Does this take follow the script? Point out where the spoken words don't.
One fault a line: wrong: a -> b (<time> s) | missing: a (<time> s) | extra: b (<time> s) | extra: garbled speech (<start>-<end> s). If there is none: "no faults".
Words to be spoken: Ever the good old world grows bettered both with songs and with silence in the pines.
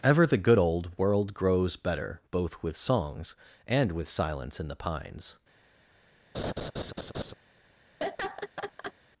wrong: bettered -> better (1.8 s)